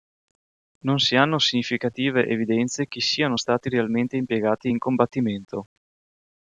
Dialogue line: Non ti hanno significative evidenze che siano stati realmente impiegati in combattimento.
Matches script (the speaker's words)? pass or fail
fail